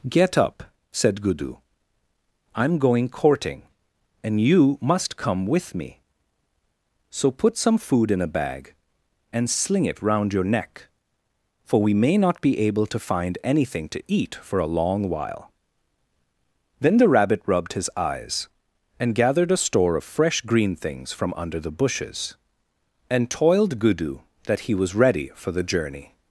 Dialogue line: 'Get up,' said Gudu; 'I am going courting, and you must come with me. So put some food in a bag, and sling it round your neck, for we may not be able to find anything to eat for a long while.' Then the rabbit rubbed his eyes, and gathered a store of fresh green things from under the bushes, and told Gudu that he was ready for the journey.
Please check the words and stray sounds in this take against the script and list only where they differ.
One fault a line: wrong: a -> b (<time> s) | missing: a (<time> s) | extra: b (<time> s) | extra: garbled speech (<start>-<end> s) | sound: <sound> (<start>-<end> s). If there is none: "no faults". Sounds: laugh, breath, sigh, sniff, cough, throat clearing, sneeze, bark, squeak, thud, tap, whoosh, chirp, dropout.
wrong: told -> toiled (23.3 s)